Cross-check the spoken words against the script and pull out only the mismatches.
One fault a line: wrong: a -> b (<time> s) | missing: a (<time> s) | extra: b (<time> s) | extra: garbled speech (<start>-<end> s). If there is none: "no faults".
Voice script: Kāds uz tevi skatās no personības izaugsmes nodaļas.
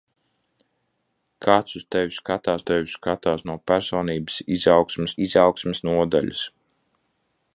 extra: tevi skatās (2.7 s)
extra: izaugsmes (5.3 s)